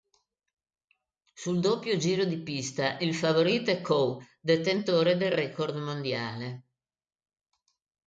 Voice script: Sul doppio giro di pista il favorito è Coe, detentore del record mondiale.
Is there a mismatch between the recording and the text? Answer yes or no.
no